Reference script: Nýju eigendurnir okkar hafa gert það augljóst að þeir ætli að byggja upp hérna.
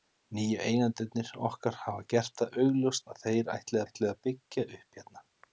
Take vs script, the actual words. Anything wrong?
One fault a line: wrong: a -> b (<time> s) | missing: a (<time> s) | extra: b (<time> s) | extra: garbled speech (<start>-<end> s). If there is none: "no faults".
extra: ætli (3.8 s)